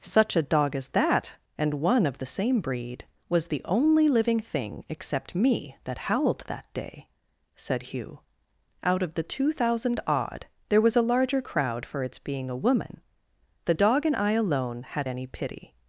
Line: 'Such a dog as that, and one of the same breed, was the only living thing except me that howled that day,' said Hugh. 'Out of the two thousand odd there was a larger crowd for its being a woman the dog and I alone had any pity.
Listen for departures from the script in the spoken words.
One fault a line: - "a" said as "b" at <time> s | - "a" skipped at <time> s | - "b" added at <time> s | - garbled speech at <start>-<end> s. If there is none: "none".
none